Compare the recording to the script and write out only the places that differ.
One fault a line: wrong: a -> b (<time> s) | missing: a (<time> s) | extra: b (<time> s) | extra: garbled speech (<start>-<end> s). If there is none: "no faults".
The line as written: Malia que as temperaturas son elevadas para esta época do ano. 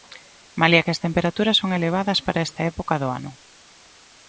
no faults